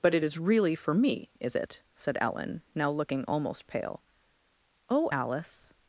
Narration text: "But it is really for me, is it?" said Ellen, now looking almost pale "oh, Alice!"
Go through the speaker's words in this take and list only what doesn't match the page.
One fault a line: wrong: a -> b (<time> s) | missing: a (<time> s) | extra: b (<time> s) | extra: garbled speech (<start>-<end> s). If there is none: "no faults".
no faults